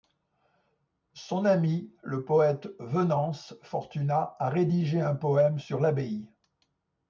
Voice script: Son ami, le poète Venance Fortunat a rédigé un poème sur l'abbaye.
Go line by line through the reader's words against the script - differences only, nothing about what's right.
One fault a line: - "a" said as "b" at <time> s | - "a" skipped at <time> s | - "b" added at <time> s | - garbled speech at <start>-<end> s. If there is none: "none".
none